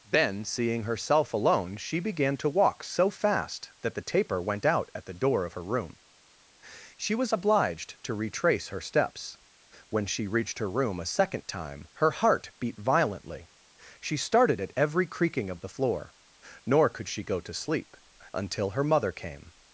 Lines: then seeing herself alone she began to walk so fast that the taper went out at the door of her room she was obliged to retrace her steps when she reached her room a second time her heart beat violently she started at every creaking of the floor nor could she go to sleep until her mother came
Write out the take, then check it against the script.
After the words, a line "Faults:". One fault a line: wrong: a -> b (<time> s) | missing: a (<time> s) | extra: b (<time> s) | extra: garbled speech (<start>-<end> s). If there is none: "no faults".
then seeing herself alone she began to walk so fast that the taper went out at the door of her room she was obliged to retrace her steps when she reached her room a second time her heart beat violently she started at every creaking of the floor nor could she go to sleep until her mother came
Faults:
no faults